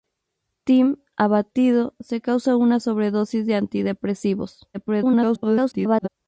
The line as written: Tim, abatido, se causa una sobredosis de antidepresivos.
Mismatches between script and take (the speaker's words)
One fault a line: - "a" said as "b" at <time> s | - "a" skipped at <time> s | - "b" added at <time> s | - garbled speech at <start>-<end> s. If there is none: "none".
- garbled speech at 4.7-6.1 s